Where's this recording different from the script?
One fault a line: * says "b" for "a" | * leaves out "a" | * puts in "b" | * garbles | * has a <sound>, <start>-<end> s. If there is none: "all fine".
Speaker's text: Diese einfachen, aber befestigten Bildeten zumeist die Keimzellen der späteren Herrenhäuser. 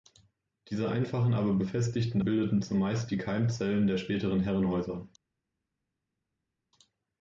all fine